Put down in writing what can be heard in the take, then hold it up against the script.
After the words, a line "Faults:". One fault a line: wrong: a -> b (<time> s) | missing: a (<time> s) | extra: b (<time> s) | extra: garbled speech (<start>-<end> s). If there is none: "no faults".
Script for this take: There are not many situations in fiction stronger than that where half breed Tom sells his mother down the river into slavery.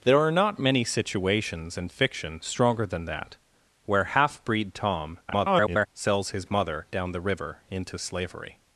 There are not many situations in fiction stronger than that where half breed Tom [garbled] sells his mother down the river into slavery.
Faults:
extra: garbled speech (5.3-5.9 s)